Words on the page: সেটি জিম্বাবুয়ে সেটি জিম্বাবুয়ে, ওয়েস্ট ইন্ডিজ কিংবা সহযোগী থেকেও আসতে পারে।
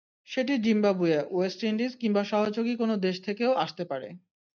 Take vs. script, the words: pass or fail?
fail